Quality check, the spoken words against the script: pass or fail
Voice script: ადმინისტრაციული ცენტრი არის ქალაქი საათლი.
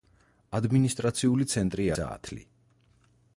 fail